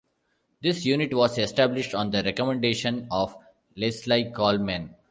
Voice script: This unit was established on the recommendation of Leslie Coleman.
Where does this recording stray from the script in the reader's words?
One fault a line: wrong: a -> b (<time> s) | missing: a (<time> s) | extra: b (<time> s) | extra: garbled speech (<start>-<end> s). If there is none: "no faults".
no faults